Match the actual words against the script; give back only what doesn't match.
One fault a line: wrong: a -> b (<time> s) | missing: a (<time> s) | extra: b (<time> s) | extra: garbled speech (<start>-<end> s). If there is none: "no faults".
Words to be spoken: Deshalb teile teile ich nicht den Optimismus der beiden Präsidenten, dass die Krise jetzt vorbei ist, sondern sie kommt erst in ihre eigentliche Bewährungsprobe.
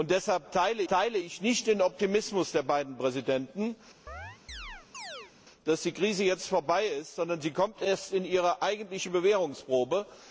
no faults